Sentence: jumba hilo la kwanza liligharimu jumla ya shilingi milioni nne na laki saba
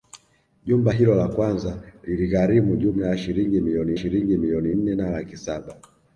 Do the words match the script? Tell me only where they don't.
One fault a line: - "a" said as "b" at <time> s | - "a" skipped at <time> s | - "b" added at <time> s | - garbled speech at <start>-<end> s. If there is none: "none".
- "shilingi milioni" added at 3.9 s